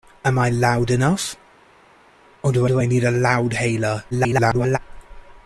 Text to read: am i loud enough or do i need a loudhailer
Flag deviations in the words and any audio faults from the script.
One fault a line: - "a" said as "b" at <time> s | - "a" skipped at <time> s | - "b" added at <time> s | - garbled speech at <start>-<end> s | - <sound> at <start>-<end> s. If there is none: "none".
- "do" added at 2.7 s
- garbled speech at 4.1-4.8 s